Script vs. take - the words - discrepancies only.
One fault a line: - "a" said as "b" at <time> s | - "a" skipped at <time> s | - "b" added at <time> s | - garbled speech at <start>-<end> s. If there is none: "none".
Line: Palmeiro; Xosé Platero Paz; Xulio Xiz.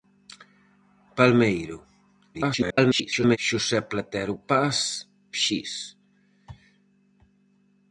- garbled speech at 2.3-3.4 s
- "Xulio" skipped at 4.8 s